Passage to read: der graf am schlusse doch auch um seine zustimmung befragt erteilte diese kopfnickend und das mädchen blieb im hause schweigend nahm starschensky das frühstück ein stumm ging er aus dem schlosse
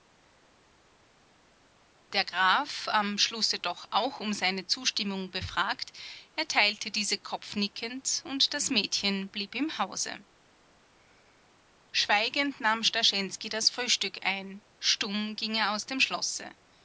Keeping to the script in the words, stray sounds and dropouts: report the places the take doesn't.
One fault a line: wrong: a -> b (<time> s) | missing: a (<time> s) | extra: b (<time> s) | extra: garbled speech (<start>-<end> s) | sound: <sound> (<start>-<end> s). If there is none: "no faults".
no faults